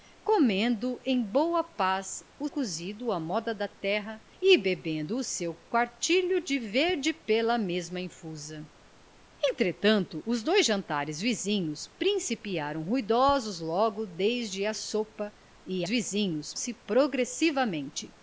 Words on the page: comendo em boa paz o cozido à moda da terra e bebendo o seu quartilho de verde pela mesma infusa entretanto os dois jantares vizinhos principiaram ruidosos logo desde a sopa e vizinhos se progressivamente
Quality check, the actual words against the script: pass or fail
pass